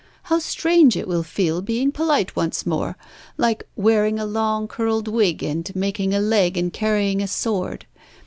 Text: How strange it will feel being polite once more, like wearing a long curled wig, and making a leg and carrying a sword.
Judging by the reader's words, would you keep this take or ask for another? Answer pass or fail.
pass